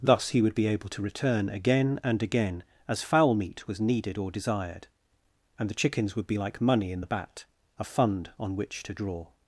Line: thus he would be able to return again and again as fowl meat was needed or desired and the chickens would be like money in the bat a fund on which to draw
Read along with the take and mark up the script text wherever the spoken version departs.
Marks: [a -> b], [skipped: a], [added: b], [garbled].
thus he would be able to return again and again as fowl meat was needed or desired and the chickens would be like money in the bat a fund on which to draw